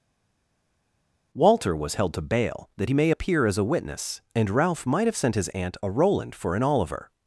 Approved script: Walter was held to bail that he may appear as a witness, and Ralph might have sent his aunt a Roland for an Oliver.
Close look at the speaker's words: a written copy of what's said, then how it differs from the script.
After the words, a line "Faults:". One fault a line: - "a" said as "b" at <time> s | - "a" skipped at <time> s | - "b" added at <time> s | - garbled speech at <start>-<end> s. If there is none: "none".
Walter was held to bail that he may appear as a witness, and Ralph might have sent his aunt a Roland for an Oliver.
Faults:
none